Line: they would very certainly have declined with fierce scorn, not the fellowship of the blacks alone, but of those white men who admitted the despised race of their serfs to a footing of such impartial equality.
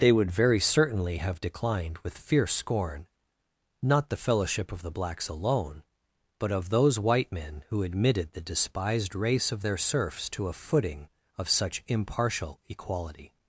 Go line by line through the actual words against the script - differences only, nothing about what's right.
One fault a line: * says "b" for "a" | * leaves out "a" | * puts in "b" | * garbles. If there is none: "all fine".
all fine